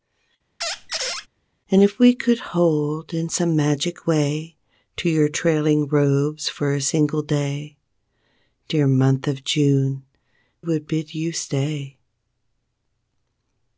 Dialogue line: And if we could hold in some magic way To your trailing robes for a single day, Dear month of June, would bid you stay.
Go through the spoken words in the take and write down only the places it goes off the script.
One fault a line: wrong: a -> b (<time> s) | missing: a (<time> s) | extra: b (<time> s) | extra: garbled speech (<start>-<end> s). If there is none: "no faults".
no faults